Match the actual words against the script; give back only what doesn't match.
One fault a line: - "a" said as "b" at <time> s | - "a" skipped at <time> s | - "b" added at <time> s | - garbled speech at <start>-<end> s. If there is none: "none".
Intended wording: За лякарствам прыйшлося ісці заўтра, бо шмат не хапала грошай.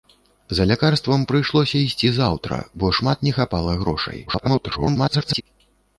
- garbled speech at 4.3-5.4 s